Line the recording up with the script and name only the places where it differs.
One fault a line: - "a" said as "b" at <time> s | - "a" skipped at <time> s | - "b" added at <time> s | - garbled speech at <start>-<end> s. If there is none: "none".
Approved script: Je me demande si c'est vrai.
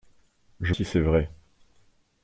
- "me demande" skipped at 0.7 s